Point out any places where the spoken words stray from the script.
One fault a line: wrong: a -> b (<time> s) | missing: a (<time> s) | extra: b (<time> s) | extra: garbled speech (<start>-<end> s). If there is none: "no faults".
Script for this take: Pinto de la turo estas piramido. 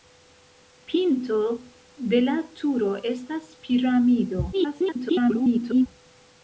extra: garbled speech (4.5-5.9 s)